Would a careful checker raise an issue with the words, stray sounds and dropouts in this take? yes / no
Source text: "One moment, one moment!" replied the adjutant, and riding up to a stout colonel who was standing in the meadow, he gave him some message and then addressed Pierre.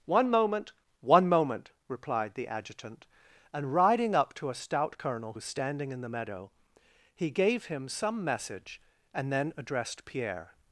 yes